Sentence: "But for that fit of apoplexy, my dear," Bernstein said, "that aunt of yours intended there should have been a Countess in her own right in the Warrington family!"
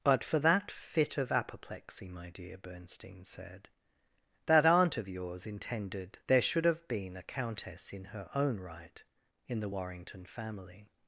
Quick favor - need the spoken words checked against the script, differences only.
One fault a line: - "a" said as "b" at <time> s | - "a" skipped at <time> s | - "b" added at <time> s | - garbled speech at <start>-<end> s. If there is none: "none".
none